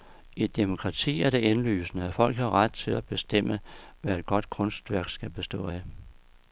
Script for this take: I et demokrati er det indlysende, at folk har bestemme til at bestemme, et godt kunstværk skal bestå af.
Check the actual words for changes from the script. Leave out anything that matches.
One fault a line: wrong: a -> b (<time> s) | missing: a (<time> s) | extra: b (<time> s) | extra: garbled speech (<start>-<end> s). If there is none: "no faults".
wrong: bestemme -> ret (2.5 s)
extra: hvad (4.0 s)